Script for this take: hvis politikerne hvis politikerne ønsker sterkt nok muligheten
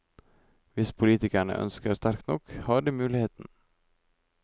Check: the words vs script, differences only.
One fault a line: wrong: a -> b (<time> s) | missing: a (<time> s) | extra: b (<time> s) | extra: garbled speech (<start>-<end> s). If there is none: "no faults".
missing: hvis politikerne (1.6 s)
extra: har de (2.5 s)